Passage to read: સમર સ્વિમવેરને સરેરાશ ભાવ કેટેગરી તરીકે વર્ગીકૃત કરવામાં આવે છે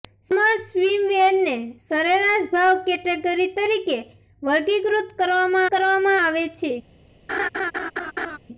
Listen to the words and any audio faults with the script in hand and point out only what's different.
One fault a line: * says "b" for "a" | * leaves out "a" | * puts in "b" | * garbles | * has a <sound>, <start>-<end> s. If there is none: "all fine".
* puts in "કરવામાં"
* has a laugh, 7.3-8.4 s